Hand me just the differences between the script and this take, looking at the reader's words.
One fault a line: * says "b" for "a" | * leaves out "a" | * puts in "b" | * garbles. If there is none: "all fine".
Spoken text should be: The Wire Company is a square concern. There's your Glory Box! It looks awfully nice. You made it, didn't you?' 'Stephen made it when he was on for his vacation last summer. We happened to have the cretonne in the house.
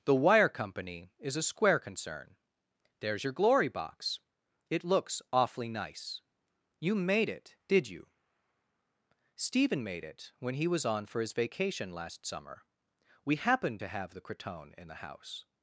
* says "did" for "didn't"